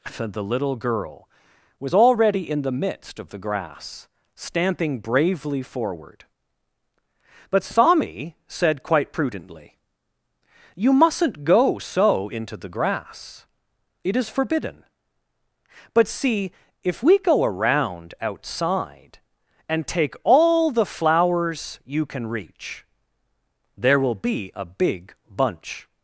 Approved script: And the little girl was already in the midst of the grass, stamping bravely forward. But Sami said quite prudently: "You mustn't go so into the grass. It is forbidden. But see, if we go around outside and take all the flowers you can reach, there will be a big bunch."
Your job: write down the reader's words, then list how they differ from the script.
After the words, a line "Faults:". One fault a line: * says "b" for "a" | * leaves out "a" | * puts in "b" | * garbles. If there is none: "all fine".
the little girl was already in the midst of the grass, stamping bravely forward. But Sami said quite prudently: "You mustn't go so into the grass. It is forbidden. But see, if we go around outside and take all the flowers you can reach, there will be a big bunch."
Faults:
* leaves out "And"